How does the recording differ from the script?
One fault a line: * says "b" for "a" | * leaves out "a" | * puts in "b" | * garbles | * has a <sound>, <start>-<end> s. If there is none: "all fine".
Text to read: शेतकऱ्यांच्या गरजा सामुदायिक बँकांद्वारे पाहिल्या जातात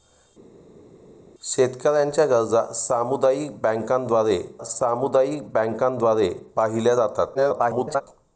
* puts in "सामुदायिक बँकांद्वारे"
* garbles